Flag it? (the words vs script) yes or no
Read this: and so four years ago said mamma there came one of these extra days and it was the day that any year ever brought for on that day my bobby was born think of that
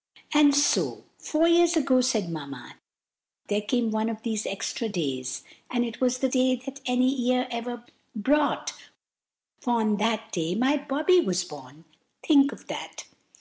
no